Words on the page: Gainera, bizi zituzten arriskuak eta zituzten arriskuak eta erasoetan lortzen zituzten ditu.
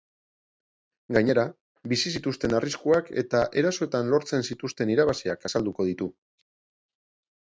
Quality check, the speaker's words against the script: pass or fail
fail